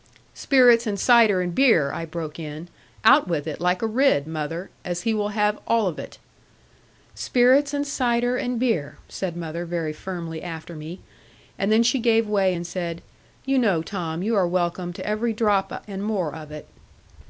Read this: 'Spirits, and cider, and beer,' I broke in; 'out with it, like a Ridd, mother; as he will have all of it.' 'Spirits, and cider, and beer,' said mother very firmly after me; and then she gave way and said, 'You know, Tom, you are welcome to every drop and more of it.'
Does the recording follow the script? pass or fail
pass